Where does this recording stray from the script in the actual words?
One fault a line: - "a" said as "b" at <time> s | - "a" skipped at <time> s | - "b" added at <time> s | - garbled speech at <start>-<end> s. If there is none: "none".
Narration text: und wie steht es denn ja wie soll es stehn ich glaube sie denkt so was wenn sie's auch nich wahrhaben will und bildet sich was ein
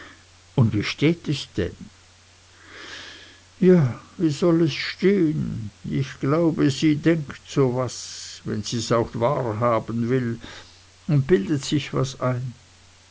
- "nich" skipped at 9.1 s